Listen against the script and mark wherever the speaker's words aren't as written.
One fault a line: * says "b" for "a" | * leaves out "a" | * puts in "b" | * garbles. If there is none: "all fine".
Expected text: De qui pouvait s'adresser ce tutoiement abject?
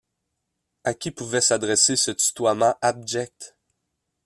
* says "À" for "De"